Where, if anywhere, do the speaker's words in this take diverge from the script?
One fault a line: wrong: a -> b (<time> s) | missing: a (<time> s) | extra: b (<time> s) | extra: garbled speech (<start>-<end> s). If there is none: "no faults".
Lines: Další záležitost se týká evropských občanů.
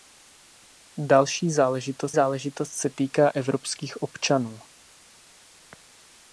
extra: záležitost (2.1 s)